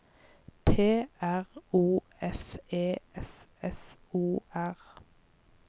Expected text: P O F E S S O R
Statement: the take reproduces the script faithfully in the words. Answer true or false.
false